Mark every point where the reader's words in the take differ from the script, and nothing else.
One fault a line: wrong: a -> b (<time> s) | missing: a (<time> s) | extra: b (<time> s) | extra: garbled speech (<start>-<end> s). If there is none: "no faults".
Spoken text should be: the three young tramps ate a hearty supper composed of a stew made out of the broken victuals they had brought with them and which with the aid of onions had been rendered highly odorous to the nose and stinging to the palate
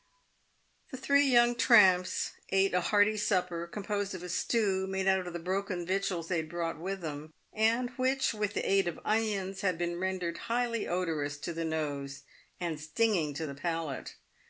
no faults